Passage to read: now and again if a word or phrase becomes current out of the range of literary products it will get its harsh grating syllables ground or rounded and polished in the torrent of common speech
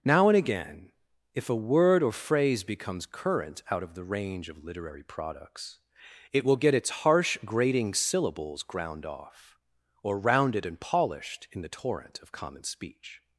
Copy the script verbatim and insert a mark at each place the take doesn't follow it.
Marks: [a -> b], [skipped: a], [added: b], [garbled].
now and again if a word or phrase becomes current out of the range of literary products it will get its harsh grating syllables ground [added: off] or rounded and polished in the torrent of common speech